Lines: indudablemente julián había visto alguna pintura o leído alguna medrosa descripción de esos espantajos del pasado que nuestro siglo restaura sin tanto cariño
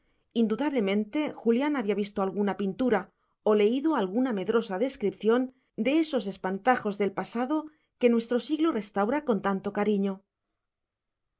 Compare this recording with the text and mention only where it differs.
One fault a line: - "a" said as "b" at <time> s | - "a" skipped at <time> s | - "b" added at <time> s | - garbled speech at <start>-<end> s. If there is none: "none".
- "sin" said as "con" at 9.3 s